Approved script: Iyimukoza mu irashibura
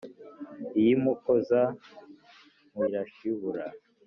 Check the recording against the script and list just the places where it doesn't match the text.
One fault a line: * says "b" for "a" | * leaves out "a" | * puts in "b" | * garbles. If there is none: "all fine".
all fine